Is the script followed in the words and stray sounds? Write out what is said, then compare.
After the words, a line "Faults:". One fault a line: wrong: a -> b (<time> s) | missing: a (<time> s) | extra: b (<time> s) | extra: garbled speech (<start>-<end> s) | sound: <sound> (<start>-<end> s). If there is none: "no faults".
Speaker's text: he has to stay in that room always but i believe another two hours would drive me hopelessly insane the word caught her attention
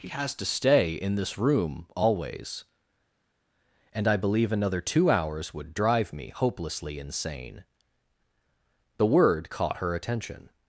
he has to stay in this room always and i believe another two hours would drive me hopelessly insane the word caught her attention
Faults:
wrong: that -> this (1.2 s)
wrong: but -> and (3.9 s)